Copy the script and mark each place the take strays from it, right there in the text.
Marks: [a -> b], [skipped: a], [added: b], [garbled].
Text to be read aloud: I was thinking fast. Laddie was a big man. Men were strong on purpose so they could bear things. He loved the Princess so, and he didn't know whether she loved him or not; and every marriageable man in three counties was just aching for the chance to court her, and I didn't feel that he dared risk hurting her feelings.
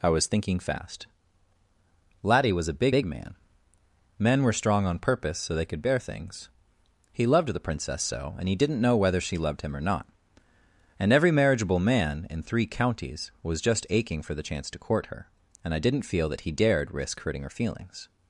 I was thinking fast. Laddie was a big [added: big] man. Men were strong on purpose so they could bear things. He loved the Princess so, and he didn't know whether she loved him or not; and every marriageable man in three counties was just aching for the chance to court her, and I didn't feel that he dared risk hurting her feelings.